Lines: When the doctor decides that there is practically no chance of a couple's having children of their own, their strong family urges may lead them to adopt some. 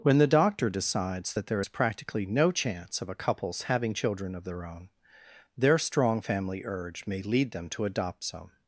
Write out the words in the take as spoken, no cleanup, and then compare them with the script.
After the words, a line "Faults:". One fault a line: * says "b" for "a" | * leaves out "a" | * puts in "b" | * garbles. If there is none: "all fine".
When the doctor decides that there is practically no chance of a couple's having children of their own, their strong family urge may lead them to adopt some.
Faults:
* says "urge" for "urges"